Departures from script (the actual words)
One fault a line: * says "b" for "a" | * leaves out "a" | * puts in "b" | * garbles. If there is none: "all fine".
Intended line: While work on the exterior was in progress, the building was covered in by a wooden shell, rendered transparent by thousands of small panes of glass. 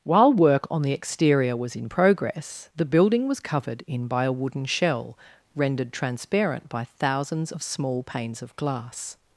all fine